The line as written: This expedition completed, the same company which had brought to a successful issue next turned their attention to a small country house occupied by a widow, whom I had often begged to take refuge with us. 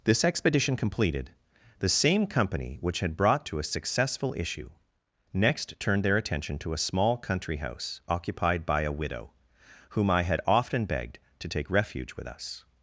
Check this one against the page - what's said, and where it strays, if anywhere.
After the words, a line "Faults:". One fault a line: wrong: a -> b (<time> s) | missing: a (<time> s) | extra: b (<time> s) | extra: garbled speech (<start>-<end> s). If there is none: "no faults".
This expedition completed, the same company which had brought to a successful issue next turned their attention to a small country house occupied by a widow, whom I had often begged to take refuge with us.
Faults:
no faults